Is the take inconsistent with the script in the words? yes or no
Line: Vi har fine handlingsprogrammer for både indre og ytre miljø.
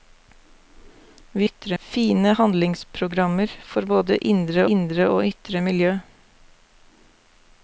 yes